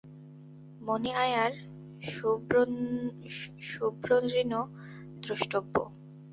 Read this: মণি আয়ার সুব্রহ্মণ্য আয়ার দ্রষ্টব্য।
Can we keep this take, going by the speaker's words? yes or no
no